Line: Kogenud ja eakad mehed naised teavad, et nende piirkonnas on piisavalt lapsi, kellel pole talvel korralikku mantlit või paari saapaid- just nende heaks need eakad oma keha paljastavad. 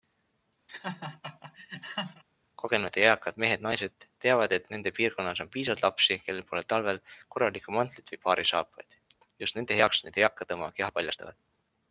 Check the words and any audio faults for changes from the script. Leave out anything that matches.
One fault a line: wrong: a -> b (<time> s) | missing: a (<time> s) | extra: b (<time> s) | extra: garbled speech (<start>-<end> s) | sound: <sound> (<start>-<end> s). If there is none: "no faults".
sound: laugh (0.7-2.2 s)